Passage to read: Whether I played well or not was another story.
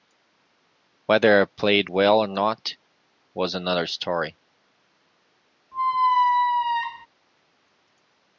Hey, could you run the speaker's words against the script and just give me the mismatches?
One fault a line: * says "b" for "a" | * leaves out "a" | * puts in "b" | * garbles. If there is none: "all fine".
all fine